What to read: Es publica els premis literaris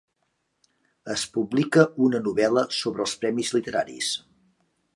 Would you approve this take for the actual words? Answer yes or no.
no